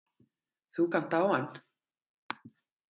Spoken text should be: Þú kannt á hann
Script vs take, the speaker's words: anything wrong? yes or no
no